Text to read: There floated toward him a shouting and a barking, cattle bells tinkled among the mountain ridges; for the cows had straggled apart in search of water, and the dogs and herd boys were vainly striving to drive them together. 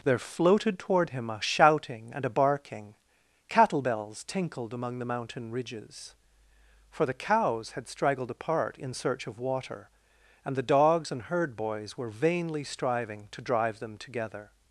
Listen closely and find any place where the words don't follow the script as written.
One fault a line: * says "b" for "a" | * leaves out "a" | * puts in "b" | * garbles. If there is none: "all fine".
all fine